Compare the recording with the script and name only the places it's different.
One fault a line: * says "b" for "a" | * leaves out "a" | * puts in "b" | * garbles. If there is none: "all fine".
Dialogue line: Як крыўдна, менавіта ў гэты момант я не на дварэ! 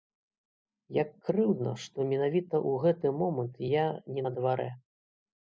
* puts in "што"